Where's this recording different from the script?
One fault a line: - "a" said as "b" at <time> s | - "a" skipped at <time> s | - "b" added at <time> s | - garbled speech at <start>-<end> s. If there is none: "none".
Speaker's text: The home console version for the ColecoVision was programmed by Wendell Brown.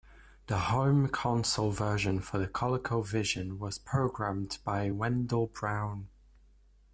none